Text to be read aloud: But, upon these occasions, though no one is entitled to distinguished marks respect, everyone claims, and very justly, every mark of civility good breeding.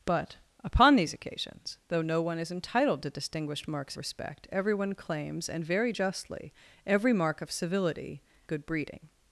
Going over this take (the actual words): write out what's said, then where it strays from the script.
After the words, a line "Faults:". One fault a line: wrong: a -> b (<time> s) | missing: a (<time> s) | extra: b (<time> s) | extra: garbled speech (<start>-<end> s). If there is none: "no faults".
But, upon these occasions, though no one is entitled to distinguished marks respect, everyone claims, and very justly, every mark of civility good breeding.
Faults:
no faults